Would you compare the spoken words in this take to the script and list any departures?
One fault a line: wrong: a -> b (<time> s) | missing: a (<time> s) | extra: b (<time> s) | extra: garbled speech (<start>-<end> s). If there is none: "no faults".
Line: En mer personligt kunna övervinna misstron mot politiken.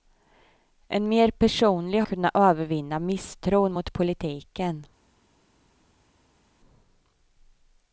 no faults